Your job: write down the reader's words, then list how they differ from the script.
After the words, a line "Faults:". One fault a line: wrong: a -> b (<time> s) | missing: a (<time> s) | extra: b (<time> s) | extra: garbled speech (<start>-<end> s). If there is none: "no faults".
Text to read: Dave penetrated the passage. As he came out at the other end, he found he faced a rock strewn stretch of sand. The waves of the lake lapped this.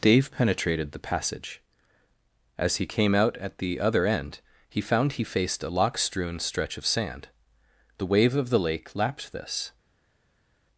Dave penetrated the passage. As he came out at the other end, he found he faced a lock strewn stretch of sand. The wave of the lake lapped this.
Faults:
wrong: rock -> lock (5.7 s)
wrong: waves -> wave (8.1 s)